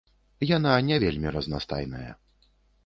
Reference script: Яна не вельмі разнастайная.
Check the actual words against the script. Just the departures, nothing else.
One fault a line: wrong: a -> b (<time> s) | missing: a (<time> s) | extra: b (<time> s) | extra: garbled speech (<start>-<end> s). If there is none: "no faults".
no faults